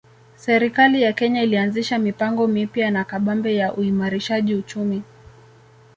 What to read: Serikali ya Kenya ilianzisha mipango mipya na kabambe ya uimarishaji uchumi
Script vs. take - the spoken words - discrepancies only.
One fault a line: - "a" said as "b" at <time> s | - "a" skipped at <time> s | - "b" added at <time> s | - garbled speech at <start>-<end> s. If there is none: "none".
none